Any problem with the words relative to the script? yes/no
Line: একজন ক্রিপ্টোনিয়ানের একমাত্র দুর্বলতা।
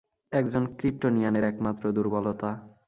no